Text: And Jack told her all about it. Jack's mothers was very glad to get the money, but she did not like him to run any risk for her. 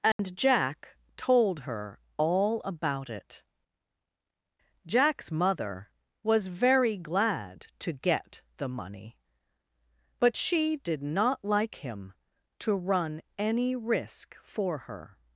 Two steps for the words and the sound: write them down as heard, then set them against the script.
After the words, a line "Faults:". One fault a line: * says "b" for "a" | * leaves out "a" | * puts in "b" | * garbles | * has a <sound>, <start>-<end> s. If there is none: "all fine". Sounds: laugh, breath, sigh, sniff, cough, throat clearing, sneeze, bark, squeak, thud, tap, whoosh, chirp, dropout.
And Jack told her all about it. Jack's mother was very glad to get the money, but she did not like him to run any risk for her.
Faults:
* has a dropout, 0.1-0.2 s
* says "mother" for "mothers"